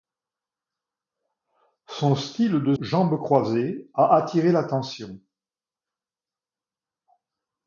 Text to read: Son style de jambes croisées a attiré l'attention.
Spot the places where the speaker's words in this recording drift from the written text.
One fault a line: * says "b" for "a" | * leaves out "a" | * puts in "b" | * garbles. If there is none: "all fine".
all fine